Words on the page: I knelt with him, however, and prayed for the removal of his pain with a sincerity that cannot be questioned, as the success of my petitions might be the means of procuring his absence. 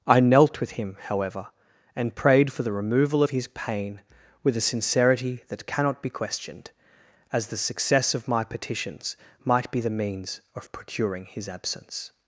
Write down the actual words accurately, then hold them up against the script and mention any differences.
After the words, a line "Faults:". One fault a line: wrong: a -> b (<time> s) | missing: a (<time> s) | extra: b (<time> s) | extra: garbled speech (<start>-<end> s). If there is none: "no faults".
I knelt with him, however, and prayed for the removal of his pain with a sincerity that cannot be questioned, as the success of my petitions might be the means of procuring his absence.
Faults:
no faults